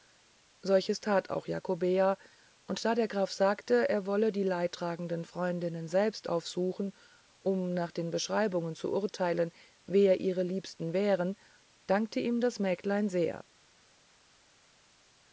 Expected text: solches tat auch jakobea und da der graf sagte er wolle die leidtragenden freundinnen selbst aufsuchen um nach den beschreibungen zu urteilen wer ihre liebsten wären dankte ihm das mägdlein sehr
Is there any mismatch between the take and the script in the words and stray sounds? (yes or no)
no